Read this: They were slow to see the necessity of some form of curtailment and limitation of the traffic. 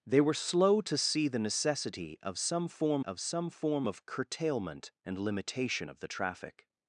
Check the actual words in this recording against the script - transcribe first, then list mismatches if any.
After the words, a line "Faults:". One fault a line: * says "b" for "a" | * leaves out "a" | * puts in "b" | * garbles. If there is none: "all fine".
They were slow to see the necessity of some form of some form of curtailment and limitation of the traffic.
Faults:
* puts in "some form of"